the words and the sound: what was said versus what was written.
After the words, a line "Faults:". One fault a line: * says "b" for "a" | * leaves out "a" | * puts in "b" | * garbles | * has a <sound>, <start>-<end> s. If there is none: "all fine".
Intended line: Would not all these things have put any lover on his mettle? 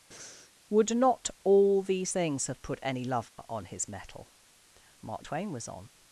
Would not all these things have put any lover on his mettle? Mark Twain was on
Faults:
* has a breath, 0.1-0.5 s
* has a dropout, 3.3-3.4 s
* puts in "Mark Twain was on"